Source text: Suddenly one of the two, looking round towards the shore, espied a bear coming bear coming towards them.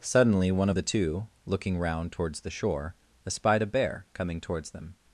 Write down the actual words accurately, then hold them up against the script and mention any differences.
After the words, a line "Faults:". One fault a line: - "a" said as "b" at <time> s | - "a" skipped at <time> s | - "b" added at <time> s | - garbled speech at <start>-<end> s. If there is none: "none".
Suddenly one of the two, looking round towards the shore, espied a bear coming towards them.
Faults:
- "bear coming" skipped at 4.4 s